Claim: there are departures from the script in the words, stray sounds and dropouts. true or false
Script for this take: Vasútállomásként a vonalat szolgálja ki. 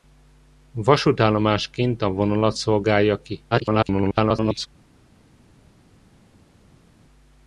true